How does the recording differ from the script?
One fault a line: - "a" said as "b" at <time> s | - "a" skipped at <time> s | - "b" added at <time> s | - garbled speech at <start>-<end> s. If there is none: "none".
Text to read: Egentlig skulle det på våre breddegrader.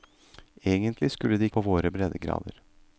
none